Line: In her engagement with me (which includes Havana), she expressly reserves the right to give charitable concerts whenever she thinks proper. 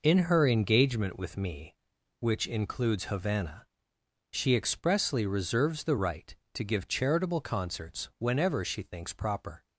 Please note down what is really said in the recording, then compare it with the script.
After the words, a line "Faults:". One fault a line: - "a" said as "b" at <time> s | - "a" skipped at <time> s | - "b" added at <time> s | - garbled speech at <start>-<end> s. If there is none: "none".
In her engagement with me (which includes Havana), she expressly reserves the right to give charitable concerts whenever she thinks proper.
Faults:
none